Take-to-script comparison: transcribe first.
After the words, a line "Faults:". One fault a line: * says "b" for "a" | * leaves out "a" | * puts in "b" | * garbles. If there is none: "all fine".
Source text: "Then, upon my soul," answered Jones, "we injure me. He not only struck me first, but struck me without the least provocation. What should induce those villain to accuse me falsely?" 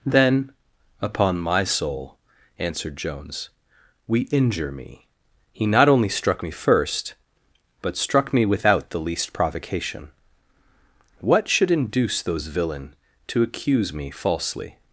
"Then, upon my soul," answered Jones, "we injure me. He not only struck me first, but struck me without the least provocation. What should induce those villain to accuse me falsely?"
Faults:
all fine